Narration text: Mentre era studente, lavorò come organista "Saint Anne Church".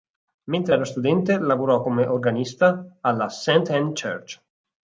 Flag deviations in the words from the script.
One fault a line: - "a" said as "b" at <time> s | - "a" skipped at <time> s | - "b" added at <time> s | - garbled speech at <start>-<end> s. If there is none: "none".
- "alla" added at 3.0 s